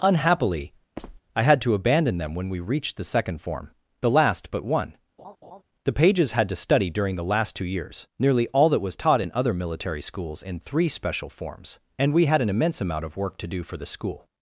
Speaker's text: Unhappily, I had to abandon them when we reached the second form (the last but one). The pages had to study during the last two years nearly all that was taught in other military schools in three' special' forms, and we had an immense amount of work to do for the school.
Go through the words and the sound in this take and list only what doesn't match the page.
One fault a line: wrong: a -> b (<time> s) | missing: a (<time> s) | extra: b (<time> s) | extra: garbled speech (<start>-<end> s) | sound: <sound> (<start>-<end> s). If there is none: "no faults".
sound: squeak (1.0-1.2 s)
sound: laugh (5.2-5.6 s)